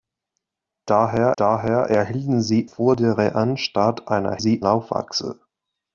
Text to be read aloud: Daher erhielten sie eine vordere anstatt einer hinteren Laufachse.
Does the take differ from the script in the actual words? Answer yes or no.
yes